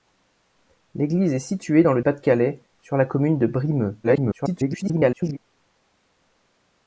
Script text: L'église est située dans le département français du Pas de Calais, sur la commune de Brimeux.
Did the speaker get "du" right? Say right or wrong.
wrong